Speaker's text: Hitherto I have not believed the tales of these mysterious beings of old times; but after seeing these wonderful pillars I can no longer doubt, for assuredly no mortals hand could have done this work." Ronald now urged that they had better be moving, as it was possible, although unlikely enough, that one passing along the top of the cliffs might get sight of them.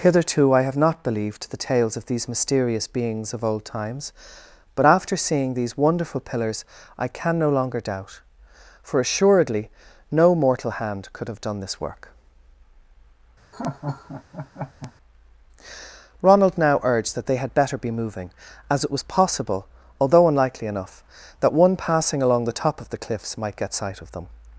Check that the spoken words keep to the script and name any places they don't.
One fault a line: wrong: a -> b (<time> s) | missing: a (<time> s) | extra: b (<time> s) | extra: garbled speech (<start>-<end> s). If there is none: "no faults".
wrong: mortals -> mortal (10.3 s)